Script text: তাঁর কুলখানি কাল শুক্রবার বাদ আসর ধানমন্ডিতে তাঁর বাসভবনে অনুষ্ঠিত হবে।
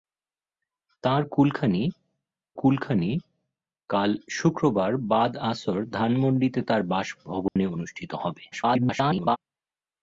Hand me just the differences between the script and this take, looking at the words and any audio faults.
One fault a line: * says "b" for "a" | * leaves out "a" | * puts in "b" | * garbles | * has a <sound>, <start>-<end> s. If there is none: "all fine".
* puts in "কুলখানি"
* has a dropout, 7.5-7.6 s
* garbles